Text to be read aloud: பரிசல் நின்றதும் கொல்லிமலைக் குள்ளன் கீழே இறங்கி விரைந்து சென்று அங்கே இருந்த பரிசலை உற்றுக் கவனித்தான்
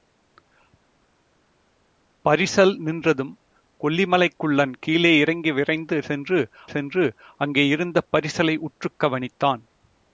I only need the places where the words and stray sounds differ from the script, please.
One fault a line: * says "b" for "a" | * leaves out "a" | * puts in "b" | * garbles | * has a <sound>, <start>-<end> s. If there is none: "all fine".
* puts in "சென்று"